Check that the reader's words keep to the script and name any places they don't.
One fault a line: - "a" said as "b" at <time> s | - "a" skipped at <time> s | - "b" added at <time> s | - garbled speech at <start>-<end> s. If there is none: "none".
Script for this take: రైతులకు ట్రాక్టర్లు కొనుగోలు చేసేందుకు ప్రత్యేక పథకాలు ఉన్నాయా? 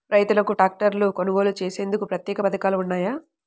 none